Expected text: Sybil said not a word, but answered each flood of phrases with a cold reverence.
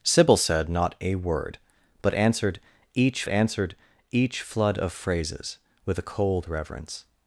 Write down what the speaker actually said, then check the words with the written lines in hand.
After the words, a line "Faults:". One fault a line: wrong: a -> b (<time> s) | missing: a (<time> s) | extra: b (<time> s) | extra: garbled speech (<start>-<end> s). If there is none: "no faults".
Sybil said not a word, but answered each answered each flood of phrases with a cold reverence.
Faults:
extra: answered each (3.3 s)